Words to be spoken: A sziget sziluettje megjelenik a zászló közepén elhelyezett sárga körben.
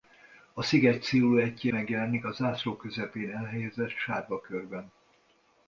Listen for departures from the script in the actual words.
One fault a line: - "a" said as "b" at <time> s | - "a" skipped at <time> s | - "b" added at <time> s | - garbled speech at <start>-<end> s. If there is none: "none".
none